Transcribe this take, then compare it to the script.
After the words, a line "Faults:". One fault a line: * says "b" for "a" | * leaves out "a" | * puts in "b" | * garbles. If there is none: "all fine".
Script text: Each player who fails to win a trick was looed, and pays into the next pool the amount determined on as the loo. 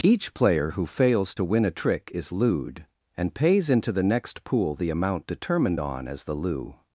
Each player who fails to win a trick is looed, and pays into the next pool the amount determined on as the loo.
Faults:
* says "is" for "was"